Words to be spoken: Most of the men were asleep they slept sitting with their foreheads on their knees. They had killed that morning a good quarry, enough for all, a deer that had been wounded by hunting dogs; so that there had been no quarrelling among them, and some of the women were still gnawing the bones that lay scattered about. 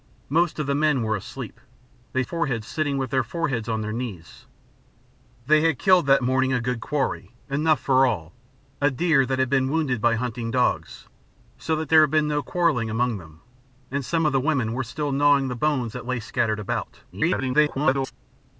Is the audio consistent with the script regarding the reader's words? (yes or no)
no